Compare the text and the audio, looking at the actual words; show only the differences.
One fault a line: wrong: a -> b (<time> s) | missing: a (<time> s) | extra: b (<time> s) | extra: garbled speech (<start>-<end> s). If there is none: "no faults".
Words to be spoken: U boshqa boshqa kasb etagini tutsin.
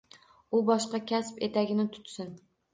missing: boshqa (1.0 s)